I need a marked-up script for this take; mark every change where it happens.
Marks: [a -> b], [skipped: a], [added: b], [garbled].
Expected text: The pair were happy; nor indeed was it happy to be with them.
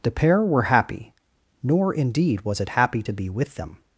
The pair were happy; nor indeed was it happy to be with them.